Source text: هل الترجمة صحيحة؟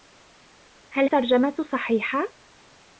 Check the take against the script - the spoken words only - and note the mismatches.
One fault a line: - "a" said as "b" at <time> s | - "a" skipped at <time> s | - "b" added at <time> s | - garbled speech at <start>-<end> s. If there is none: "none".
none